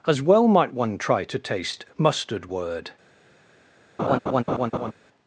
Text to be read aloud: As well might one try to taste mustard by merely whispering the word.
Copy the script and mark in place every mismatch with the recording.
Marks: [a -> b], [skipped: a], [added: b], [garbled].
As well might one try to taste mustard [skipped: by merely whispering the] word.